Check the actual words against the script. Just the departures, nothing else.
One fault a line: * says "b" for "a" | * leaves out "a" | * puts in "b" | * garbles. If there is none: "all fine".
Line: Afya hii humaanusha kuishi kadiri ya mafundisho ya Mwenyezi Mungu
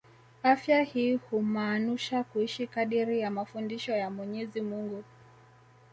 all fine